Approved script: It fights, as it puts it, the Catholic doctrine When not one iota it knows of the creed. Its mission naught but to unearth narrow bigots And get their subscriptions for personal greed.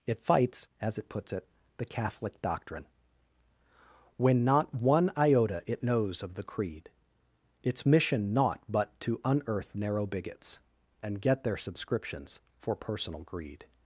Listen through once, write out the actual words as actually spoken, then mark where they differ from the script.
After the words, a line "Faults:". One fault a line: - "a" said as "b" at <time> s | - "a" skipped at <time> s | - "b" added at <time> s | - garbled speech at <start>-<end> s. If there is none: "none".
It fights, as it puts it, the Catholic doctrine When not one iota it knows of the creed. Its mission naught but to unearth narrow bigots And get their subscriptions for personal greed.
Faults:
none